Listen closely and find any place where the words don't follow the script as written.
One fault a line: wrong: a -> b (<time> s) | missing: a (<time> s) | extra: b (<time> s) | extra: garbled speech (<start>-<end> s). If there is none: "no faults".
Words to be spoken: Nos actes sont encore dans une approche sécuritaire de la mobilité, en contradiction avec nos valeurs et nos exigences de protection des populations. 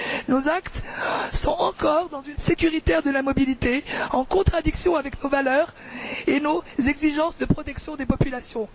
missing: approche (2.4 s)